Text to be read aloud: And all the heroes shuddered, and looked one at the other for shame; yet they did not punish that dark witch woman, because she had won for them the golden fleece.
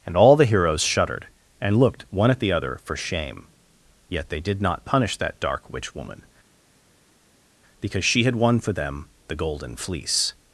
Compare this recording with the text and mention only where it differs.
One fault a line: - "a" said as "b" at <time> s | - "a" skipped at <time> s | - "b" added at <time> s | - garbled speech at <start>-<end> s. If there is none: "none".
none